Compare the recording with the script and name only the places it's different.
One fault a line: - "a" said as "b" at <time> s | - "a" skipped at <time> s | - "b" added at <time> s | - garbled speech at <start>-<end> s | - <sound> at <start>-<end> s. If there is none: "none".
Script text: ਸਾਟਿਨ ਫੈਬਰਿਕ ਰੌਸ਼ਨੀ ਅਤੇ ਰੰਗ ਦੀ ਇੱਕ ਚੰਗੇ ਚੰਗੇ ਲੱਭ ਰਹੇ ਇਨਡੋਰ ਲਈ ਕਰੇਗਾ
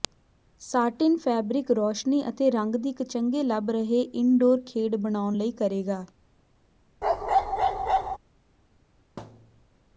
- "ਚੰਗੇ" skipped at 3.4 s
- "ਖੇਡ ਬਣਾਉਣ" added at 4.7 s
- bark at 7.0-8.2 s
- thud at 9.2-9.7 s